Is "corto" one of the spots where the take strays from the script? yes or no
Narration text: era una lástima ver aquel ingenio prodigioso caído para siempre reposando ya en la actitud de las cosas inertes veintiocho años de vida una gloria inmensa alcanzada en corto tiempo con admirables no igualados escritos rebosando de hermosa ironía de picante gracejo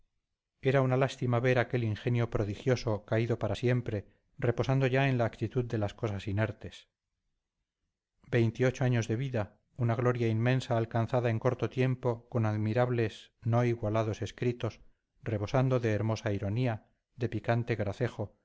no